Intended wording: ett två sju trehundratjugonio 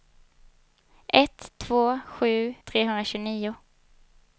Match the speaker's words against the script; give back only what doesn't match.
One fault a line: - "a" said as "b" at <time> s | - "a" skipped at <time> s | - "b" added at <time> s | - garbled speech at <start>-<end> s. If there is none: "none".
none